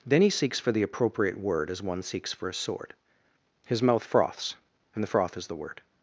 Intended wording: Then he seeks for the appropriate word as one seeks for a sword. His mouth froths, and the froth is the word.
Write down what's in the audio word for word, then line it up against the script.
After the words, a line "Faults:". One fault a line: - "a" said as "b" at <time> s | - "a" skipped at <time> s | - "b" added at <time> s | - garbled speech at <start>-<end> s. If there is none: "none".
Then he seeks for the appropriate word as one seeks for a sword. His mouth froths, and the froth is the word.
Faults:
none